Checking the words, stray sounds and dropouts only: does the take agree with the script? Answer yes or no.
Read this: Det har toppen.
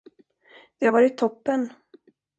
no